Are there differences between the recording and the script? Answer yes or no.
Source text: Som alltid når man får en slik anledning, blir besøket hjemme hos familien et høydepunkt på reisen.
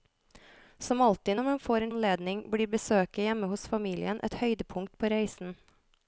yes